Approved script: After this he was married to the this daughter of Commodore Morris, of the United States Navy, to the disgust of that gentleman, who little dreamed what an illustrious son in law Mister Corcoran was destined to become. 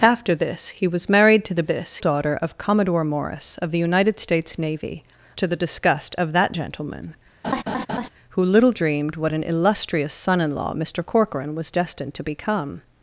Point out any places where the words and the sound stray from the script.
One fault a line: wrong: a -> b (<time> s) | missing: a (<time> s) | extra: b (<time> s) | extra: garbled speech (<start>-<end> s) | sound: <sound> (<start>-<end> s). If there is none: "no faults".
sound: laugh (7.4-8.1 s)